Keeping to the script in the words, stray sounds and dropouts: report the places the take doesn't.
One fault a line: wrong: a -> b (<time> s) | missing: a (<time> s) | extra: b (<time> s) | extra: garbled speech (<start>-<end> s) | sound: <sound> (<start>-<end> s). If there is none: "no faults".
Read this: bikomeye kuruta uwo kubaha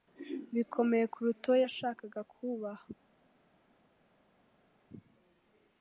extra: yashakaga (1.6 s)